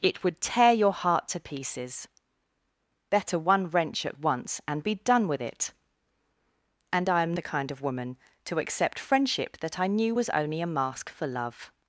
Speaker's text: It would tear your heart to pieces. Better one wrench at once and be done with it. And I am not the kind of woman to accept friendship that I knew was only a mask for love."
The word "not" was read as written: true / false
false